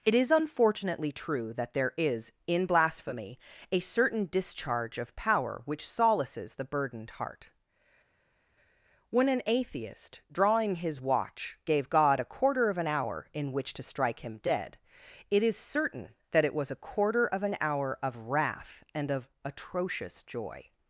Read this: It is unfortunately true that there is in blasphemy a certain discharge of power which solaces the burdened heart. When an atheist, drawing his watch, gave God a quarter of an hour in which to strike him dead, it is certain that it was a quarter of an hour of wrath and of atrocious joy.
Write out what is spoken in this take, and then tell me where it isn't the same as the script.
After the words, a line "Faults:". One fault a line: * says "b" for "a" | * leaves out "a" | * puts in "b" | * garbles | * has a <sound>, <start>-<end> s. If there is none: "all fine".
It is unfortunately true that there is in blasphemy a certain discharge of power which solaces the burdened heart. When an atheist, drawing his watch, gave God a quarter of an hour in which to strike him dead, it is certain that it was a quarter of an hour of wrath and of atrocious joy.
Faults:
all fine